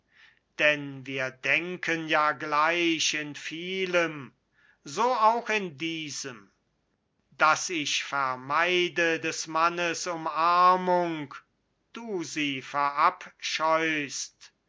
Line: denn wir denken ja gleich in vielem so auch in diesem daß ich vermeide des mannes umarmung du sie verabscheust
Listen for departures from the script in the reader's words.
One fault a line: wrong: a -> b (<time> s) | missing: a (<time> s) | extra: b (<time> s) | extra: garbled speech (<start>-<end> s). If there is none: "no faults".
no faults